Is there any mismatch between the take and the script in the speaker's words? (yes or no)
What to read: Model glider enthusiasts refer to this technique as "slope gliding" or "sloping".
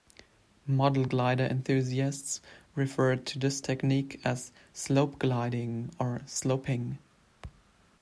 no